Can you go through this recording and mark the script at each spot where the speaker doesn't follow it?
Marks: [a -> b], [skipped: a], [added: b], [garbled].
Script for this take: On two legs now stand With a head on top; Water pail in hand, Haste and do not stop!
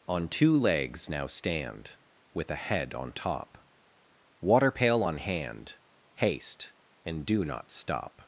On two legs now stand With a head on top; Water pail [in -> on] hand, Haste and do not stop!